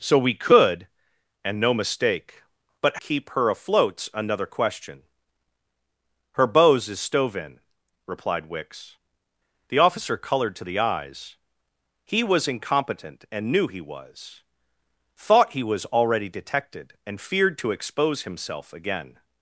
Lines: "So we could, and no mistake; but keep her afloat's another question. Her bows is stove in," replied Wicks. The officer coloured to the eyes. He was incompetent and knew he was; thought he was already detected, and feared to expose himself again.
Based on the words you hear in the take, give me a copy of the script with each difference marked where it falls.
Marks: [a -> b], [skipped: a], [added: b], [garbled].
"So we could, and no mistake; but keep her afloat's another question. Her bows is stove in," replied Wicks. The officer coloured to the eyes. He was incompetent and knew he was; thought he was already detected, and feared to expose himself again.